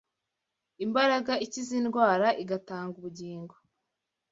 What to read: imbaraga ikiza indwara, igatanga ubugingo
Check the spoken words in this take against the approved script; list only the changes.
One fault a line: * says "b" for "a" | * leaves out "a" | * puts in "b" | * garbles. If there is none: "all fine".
all fine